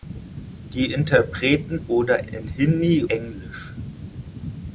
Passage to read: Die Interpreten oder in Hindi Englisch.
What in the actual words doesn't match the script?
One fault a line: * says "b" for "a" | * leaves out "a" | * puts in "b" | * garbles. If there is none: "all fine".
all fine